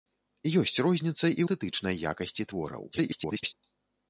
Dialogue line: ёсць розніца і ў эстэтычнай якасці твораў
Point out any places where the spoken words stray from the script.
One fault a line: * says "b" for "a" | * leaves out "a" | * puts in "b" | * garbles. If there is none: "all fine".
* leaves out "ў"
* garbles